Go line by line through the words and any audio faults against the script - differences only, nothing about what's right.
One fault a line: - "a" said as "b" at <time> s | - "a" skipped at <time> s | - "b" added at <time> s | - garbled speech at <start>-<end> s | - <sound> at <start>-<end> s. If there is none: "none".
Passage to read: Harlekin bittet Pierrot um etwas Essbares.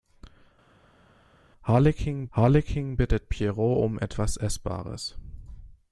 - "harlekin" added at 2.3 s